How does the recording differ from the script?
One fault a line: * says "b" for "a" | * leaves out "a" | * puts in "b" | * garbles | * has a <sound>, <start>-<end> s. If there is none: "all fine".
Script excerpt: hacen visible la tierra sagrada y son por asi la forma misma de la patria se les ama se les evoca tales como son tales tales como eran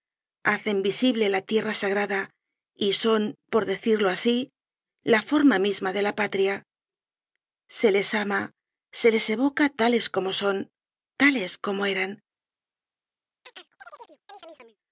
* puts in "decirlo"
* leaves out "tales"
* has a chirp, 13.4-14.8 s